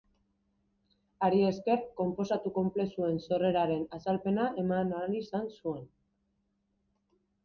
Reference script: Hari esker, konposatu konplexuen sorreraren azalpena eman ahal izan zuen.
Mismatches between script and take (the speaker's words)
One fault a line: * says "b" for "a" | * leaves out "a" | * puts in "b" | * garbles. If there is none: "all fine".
all fine